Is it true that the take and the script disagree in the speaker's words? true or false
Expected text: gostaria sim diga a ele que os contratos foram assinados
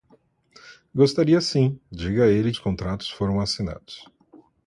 true